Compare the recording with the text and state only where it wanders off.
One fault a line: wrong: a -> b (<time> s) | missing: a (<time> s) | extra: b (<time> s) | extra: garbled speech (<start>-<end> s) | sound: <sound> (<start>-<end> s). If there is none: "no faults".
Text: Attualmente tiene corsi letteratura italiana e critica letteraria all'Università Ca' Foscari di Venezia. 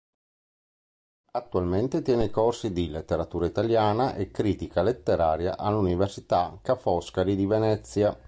extra: di (2.7 s)